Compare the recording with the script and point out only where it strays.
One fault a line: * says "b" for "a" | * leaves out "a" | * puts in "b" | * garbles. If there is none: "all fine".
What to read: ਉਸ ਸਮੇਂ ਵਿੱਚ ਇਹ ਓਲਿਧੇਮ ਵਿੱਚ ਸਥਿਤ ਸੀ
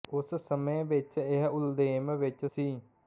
* leaves out "ਸਥਿਤ"